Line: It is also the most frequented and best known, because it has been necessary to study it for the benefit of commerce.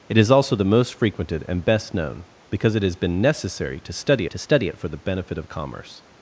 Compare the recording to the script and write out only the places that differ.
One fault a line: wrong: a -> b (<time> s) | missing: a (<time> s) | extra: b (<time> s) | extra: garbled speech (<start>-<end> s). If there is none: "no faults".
extra: to study (4.2 s)